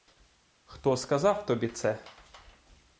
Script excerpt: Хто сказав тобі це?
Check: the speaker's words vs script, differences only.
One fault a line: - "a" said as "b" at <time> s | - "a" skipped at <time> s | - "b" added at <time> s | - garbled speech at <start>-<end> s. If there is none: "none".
none